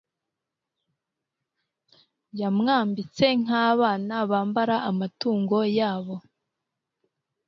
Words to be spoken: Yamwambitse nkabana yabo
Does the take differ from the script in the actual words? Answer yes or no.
yes